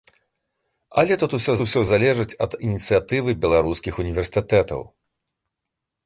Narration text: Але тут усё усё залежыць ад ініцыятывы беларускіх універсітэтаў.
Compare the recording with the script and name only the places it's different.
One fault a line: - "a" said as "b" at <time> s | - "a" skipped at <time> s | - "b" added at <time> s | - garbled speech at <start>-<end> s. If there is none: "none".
none